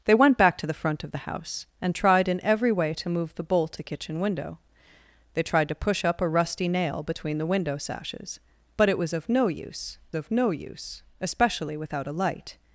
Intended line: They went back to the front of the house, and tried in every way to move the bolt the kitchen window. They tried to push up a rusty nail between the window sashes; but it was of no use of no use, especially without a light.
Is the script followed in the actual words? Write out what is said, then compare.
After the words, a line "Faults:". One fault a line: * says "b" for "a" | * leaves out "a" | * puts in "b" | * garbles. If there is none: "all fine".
They went back to the front of the house, and tried in every way to move the bolt the kitchen window. They tried to push up a rusty nail between the window sashes; but it was of no use of no use, especially without a light.
Faults:
all fine